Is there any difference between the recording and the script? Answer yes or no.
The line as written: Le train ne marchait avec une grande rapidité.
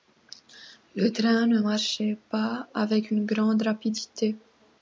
yes